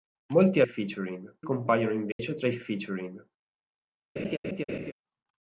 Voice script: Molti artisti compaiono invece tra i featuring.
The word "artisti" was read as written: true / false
false